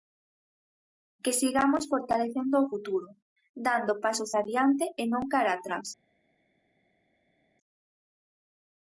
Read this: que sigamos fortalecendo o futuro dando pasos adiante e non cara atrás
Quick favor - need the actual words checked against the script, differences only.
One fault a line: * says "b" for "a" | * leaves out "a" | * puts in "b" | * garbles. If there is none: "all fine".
all fine